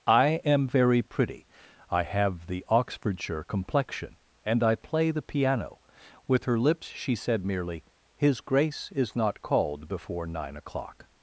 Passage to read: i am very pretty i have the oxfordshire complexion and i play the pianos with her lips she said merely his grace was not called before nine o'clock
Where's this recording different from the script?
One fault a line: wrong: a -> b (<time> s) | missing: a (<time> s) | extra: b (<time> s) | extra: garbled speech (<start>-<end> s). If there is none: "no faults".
wrong: pianos -> piano (5.2 s)
wrong: was -> is (8.9 s)